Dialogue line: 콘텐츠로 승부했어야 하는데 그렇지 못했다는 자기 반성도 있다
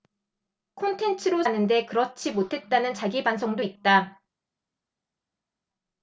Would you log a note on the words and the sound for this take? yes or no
yes